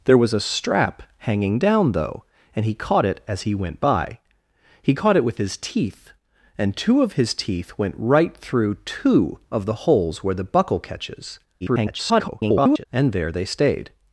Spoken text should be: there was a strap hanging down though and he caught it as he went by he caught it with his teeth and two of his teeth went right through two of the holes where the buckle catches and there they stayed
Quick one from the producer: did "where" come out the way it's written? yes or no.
yes